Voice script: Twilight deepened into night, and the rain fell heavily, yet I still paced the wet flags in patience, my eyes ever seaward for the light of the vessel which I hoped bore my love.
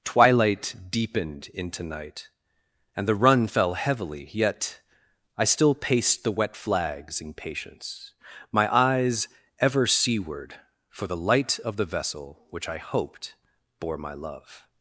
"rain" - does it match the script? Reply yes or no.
no